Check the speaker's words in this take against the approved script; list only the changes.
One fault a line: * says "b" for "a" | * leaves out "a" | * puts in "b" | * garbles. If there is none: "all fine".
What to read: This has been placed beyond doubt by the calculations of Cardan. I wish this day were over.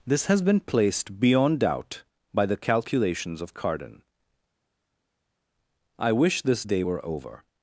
all fine